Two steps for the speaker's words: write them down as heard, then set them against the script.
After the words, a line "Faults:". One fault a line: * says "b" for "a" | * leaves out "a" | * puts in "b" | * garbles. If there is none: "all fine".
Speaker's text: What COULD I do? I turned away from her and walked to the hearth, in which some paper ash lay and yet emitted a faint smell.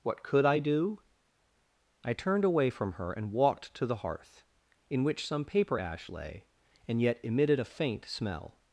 What COULD I do? I turned away from her and walked to the hearth, in which some paper ash lay and yet emitted a faint smell.
Faults:
all fine